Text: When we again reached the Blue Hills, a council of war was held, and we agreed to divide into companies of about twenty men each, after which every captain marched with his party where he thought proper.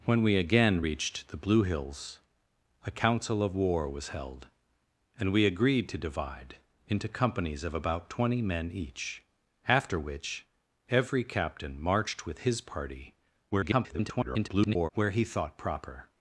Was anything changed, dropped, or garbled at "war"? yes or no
no